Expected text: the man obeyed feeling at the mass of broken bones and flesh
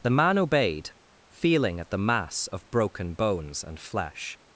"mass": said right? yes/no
yes